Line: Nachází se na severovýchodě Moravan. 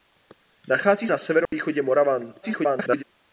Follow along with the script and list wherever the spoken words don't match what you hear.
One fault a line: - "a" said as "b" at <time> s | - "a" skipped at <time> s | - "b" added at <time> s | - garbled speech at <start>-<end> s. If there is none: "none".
- "se" skipped at 1.1 s
- garbled speech at 2.4-3.0 s